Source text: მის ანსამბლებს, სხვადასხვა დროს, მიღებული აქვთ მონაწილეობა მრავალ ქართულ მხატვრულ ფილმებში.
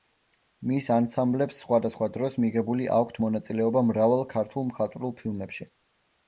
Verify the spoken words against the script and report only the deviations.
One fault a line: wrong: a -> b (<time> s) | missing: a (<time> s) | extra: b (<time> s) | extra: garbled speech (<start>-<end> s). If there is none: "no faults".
no faults